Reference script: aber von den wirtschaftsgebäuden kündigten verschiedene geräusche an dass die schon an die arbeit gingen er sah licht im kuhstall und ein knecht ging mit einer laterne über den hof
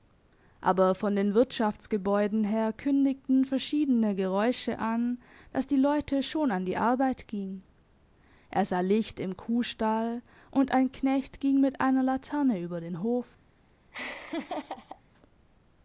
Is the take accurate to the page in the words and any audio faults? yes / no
no